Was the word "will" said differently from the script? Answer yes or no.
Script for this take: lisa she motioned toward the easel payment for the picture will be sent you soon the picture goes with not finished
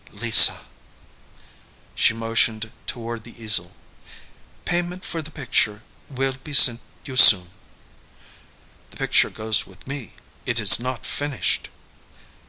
no